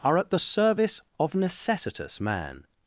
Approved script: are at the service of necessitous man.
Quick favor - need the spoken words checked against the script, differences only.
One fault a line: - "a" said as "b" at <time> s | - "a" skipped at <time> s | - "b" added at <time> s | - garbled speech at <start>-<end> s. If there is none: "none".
none